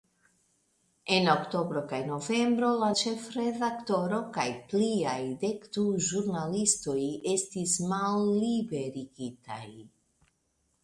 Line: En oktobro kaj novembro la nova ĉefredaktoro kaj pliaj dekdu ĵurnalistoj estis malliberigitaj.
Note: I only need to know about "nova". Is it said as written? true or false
false